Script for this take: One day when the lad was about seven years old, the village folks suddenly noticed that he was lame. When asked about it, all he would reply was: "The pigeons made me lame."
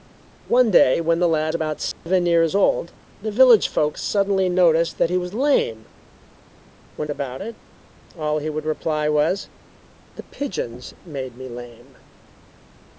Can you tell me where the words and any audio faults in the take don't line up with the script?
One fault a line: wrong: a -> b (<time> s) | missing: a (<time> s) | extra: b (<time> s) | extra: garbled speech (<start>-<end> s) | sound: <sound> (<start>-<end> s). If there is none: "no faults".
missing: was (1.5 s)
sound: dropout (1.9-2.1 s)
missing: asked (7.1 s)